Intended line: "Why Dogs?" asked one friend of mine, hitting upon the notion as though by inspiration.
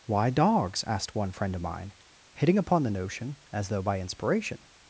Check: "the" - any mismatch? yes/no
no